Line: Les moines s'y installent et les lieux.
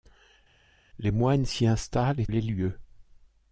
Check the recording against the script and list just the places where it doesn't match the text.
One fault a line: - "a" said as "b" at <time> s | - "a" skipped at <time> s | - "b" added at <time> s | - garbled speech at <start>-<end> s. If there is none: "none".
none